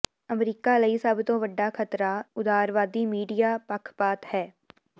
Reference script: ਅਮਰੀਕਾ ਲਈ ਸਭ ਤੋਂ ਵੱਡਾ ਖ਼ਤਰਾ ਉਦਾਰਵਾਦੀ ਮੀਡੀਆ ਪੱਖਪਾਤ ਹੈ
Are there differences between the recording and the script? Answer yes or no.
no